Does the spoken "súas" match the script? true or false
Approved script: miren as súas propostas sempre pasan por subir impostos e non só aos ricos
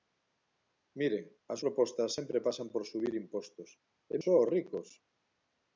false